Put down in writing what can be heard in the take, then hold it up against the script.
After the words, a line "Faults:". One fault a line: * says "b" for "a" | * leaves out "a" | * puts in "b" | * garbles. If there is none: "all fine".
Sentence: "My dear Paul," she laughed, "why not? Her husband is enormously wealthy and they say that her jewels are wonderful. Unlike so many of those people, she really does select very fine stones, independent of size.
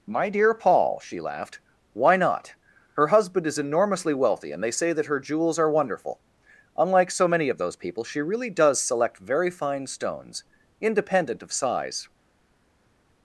"My dear Paul," she laughed, "why not? Her husband is enormously wealthy and they say that her jewels are wonderful. Unlike so many of those people, she really does select very fine stones, independent of size.
Faults:
all fine